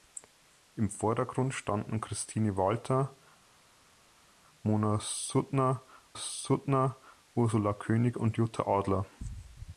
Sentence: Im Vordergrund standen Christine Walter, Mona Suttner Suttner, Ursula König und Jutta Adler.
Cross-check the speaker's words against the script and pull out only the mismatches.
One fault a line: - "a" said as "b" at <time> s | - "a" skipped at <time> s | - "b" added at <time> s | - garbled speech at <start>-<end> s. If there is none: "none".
none